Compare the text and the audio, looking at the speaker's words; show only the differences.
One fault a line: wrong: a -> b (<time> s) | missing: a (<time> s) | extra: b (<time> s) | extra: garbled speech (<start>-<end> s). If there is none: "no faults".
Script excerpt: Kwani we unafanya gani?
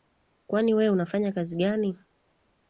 extra: kazi (1.3 s)